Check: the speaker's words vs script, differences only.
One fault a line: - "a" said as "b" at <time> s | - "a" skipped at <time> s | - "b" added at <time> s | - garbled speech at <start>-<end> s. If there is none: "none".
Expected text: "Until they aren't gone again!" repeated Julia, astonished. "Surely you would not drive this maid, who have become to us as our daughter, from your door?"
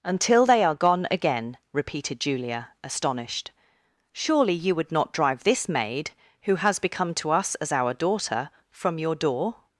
- "aren't" said as "are" at 0.6 s
- "have" said as "has" at 6.6 s